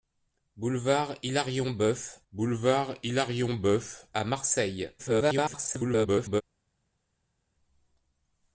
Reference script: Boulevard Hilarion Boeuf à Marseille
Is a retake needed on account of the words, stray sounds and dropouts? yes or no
yes